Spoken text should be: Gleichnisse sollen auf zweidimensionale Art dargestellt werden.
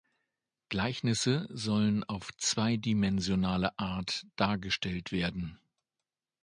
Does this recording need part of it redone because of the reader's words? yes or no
no